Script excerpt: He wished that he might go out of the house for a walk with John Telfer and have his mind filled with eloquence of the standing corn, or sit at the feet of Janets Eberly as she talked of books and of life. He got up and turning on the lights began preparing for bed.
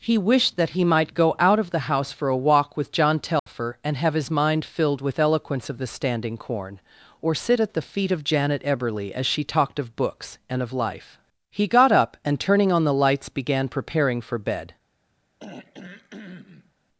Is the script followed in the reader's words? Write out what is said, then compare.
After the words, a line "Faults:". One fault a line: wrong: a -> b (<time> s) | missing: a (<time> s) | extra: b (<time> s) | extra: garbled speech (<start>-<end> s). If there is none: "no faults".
He wished that he might go out of the house for a walk with John Telfer and have his mind filled with eloquence of the standing corn, or sit at the feet of Janet Eberly as she talked of books and of life. He got up and turning on the lights began preparing for bed.
Faults:
wrong: Janets -> Janet (8.2 s)